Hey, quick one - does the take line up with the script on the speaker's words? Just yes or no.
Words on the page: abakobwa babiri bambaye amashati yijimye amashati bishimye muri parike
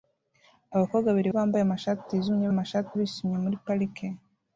yes